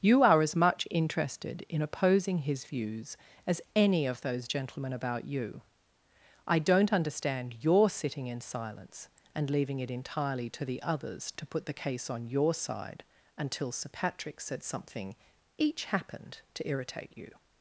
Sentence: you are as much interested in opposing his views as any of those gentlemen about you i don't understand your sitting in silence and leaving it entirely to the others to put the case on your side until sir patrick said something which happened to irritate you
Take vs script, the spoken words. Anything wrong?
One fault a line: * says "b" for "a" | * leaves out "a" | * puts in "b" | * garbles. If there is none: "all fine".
* says "each" for "which"